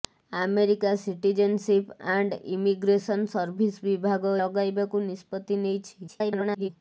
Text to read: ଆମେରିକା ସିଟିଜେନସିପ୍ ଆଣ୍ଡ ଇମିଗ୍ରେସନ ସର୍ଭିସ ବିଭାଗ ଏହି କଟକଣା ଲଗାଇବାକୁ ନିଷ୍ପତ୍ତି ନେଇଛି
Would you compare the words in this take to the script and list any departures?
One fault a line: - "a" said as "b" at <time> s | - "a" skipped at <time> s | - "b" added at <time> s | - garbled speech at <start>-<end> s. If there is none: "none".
- "ଏହି କଟକଣା" skipped at 4.3 s
- garbled speech at 6.1-6.7 s